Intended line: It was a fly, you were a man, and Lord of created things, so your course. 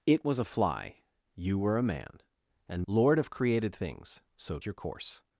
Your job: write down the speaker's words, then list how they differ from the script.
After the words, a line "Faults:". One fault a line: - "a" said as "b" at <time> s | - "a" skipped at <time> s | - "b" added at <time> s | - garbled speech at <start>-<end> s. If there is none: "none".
It was a fly, you were a man, and Lord of created things, so your course.
Faults:
none